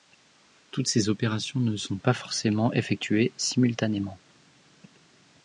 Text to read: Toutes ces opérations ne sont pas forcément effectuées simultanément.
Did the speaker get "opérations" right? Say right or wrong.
right